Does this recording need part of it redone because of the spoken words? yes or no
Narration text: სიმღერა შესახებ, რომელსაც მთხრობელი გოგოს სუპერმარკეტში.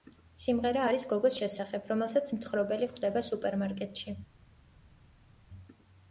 yes